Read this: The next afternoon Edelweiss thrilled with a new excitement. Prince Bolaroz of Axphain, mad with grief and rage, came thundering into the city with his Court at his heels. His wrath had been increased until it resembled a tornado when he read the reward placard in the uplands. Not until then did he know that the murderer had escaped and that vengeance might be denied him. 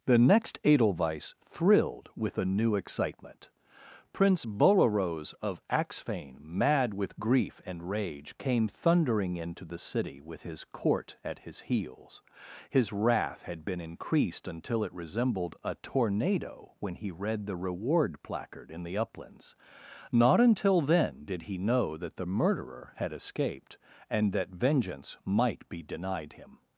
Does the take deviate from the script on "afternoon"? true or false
true